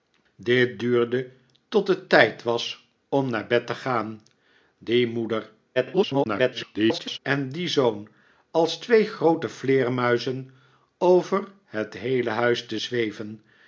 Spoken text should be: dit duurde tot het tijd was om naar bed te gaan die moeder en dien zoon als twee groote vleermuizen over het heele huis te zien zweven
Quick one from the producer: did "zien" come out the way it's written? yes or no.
no